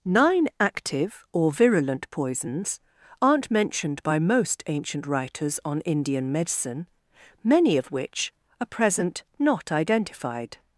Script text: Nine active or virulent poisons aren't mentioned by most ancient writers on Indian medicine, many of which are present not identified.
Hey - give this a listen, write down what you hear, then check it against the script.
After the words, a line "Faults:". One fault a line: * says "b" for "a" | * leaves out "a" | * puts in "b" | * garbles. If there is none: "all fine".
Nine active or virulent poisons aren't mentioned by most ancient writers on Indian medicine, many of which are present not identified.
Faults:
all fine